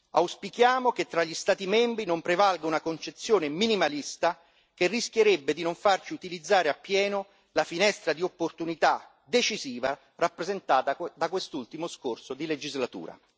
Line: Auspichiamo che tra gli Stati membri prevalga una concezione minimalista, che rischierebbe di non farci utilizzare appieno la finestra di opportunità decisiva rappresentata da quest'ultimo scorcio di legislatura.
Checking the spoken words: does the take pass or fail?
fail